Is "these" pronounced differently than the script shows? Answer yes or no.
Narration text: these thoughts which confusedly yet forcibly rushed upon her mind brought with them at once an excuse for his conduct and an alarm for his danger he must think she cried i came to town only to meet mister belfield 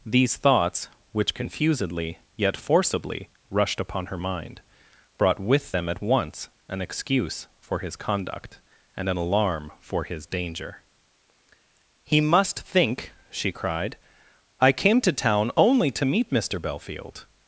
no